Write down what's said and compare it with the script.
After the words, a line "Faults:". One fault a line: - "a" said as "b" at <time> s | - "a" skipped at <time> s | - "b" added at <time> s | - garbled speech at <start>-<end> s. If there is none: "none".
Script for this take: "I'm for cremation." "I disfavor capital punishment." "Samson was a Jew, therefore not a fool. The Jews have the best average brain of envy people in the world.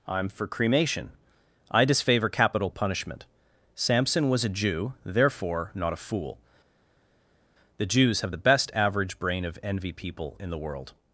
"I'm for cremation." "I disfavor capital punishment." "Samson was a Jew, therefore not a fool. The Jews have the best average brain of envy people in the world.
Faults:
none